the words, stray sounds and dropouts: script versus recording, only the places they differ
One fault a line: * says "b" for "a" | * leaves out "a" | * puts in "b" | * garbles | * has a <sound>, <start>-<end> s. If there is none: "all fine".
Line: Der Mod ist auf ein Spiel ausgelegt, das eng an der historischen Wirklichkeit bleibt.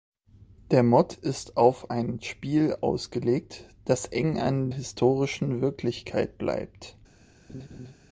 * leaves out "der"
* has a laugh, 7.5-7.9 s